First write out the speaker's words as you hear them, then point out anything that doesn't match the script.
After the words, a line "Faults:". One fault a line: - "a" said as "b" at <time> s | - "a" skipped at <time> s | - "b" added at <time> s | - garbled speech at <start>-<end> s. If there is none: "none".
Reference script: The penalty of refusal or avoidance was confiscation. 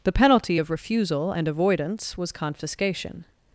The penalty of refusal and avoidance was confiscation.
Faults:
- "or" said as "and" at 1.3 s